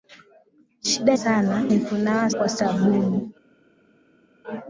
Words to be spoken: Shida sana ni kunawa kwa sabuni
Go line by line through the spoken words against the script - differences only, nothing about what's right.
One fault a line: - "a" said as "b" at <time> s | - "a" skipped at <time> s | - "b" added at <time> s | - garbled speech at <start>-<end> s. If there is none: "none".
none